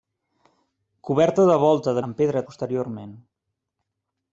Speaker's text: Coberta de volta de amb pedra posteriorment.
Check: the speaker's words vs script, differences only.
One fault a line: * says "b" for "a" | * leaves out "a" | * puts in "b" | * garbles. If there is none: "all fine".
all fine